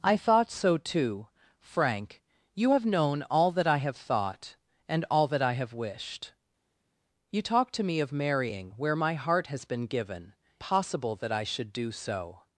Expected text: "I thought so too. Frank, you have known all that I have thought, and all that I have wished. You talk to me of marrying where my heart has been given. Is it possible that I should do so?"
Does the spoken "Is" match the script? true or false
false